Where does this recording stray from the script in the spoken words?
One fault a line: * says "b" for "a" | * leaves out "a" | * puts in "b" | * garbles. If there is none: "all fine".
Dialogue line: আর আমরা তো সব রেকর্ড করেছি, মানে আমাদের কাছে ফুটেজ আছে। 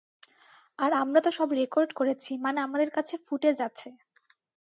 all fine